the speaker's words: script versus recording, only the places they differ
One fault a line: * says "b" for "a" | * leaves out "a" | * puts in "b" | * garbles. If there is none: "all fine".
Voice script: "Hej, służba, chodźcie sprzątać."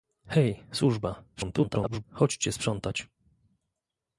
* garbles